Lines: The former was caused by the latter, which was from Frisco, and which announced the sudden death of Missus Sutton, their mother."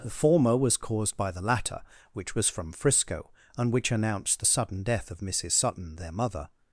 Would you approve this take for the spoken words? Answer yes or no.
yes